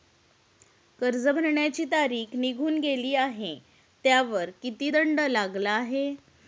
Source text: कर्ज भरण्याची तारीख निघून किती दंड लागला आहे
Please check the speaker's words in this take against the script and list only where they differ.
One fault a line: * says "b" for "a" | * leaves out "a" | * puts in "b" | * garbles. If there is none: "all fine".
* puts in "गेली आहे त्यावर"